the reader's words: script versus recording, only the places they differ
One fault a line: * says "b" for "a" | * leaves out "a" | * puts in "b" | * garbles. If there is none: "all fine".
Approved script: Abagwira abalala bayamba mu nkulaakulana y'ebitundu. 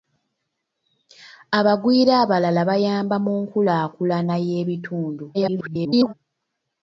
* garbles